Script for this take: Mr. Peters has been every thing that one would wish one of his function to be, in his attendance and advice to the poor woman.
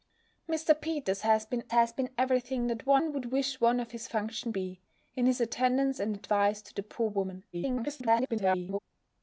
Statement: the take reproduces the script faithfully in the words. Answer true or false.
false